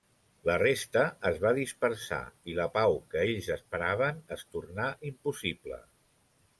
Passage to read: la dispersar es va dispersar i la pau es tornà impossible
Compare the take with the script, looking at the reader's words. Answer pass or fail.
fail